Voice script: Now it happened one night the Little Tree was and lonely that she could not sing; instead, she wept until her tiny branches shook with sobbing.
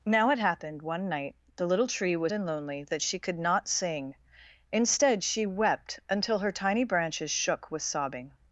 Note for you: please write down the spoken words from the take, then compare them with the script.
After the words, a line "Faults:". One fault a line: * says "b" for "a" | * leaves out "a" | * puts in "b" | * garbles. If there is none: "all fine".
Now it happened one night the Little Tree was and lonely that she could not sing; instead, she wept until her tiny branches shook with sobbing.
Faults:
all fine